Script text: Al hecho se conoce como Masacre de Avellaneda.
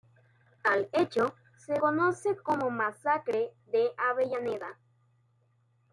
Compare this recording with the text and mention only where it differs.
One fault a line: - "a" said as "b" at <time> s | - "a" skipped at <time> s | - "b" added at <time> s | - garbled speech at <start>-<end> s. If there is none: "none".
none